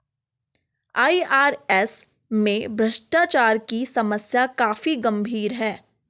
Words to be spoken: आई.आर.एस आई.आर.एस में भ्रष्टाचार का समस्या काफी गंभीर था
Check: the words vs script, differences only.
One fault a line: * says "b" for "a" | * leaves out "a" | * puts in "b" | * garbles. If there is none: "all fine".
* leaves out "आई.आर.एस"
* says "की" for "का"
* says "है" for "था"